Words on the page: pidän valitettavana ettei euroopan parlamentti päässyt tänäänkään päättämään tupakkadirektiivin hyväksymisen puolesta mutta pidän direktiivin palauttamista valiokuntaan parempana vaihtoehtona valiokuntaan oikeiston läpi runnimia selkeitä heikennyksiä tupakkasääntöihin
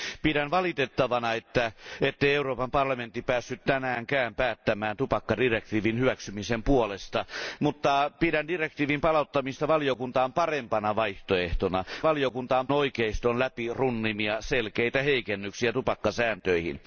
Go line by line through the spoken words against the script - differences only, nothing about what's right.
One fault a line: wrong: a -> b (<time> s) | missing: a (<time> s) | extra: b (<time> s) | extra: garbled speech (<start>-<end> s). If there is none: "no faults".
no faults